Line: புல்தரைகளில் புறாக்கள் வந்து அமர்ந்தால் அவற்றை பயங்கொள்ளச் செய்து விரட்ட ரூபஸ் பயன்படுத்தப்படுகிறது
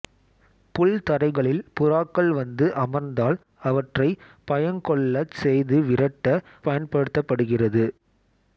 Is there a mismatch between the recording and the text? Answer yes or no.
yes